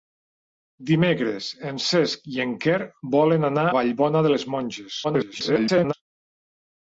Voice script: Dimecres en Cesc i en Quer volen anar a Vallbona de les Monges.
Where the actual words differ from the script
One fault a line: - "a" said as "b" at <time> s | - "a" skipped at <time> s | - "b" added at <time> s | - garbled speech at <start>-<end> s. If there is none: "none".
- "a" skipped at 3.6 s
- garbled speech at 5.0-5.9 s